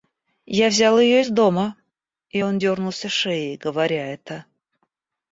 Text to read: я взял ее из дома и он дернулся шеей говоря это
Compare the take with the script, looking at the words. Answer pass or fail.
pass